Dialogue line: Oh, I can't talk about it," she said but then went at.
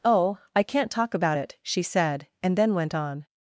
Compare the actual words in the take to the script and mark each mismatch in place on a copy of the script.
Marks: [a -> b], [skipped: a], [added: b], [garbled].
Oh, I can't talk about it," she said [but -> and] then went [at. -> on]